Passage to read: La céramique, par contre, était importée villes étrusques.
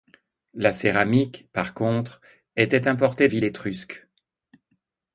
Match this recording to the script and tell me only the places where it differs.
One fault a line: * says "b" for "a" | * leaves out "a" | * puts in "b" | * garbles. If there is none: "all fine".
all fine